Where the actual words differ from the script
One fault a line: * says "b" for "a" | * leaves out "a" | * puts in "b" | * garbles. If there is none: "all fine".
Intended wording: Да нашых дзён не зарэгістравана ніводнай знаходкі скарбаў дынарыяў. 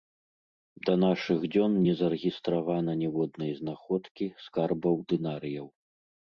all fine